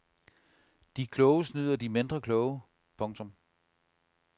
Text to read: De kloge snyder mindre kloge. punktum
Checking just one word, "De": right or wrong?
right